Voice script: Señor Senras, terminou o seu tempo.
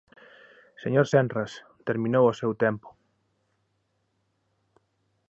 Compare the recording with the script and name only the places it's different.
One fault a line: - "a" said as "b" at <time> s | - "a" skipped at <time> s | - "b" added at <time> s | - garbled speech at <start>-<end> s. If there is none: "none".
none